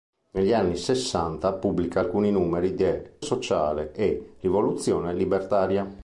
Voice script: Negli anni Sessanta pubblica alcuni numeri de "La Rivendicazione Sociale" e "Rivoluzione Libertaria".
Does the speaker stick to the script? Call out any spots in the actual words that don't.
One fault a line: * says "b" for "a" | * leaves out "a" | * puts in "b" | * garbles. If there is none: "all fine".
* leaves out "La Rivendicazione"